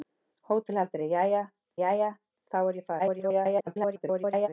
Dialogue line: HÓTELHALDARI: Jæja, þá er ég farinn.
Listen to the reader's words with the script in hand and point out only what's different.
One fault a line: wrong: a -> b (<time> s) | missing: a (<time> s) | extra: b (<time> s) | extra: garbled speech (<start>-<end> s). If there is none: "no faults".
extra: Jæja (1.8 s)
extra: garbled speech (3.0-4.5 s)